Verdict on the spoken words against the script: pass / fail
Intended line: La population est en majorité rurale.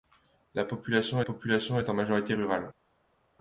fail